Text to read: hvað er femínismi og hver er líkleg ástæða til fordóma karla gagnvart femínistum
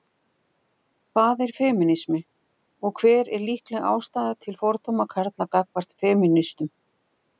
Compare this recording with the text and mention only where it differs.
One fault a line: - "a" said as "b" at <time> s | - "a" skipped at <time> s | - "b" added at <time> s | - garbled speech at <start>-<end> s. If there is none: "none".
none